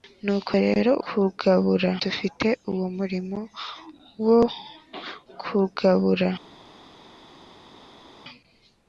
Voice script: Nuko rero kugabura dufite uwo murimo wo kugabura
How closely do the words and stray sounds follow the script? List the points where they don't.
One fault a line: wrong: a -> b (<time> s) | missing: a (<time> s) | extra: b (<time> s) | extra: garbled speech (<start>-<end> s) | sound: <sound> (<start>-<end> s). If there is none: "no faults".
no faults